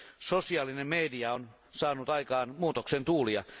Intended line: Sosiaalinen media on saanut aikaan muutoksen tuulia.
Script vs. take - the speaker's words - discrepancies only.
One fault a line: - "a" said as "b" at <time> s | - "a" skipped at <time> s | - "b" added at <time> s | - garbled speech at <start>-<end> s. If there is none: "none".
none